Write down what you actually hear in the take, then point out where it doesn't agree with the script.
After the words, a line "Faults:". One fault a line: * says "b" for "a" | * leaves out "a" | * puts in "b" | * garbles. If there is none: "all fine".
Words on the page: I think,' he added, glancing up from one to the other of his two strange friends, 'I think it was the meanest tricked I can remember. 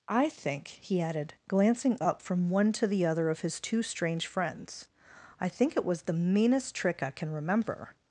I think,' he added, glancing up from one to the other of his two strange friends, 'I think it was the meanest trick I can remember.
Faults:
* says "trick" for "tricked"